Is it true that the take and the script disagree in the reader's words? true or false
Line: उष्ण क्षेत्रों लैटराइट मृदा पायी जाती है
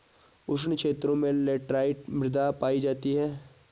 true